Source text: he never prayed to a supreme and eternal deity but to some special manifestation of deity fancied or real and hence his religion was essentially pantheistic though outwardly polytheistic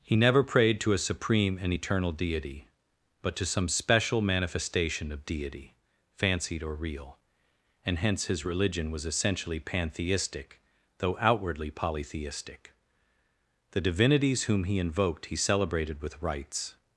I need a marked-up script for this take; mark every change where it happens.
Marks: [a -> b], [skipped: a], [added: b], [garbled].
he never prayed to a supreme and eternal deity but to some special manifestation of deity fancied or real and hence his religion was essentially pantheistic though outwardly polytheistic [added: the divinities whom he invoked he celebrated with rites]